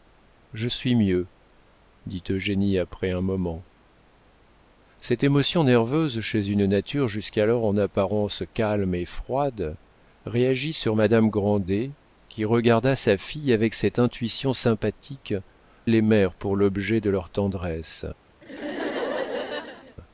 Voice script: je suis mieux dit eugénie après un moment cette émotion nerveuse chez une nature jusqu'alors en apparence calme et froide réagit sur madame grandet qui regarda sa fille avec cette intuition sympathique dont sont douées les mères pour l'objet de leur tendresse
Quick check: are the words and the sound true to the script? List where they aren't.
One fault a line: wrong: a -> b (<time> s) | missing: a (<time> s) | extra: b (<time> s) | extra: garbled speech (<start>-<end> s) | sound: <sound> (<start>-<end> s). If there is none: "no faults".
missing: dont sont douées (15.3 s)
sound: laugh (18.4-20.0 s)